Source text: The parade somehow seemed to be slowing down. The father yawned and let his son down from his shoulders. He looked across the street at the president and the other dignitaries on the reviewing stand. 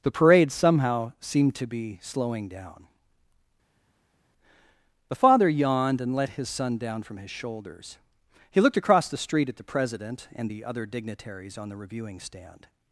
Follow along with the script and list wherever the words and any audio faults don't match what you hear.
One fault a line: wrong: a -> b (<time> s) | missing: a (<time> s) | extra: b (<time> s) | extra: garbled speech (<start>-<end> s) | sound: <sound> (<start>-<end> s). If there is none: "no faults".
no faults